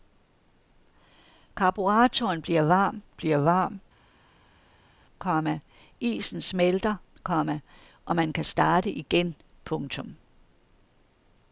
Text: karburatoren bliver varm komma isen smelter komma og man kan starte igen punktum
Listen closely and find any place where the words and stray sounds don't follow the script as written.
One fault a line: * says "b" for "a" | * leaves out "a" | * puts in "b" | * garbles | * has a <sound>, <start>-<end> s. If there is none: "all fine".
* puts in "bliver varm"